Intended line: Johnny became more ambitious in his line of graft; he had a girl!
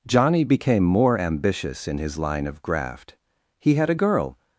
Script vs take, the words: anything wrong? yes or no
no